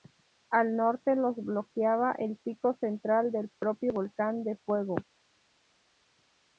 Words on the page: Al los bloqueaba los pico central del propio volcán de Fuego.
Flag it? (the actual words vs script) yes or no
yes